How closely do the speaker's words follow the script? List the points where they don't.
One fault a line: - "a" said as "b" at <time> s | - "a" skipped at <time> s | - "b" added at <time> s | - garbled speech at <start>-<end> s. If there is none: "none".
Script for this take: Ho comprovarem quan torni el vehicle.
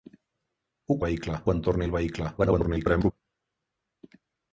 - "comprovarem" said as "vehicle" at 1.0 s
- garbled speech at 2.4-3.1 s